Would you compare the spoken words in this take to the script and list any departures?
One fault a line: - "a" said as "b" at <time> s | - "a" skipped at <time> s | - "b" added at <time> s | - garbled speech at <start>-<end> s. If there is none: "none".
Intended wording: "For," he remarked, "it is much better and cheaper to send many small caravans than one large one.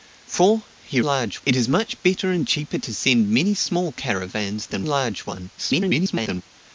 - "remarked" said as "large" at 1.0 s
- "one" skipped at 4.9 s
- garbled speech at 5.6-6.4 s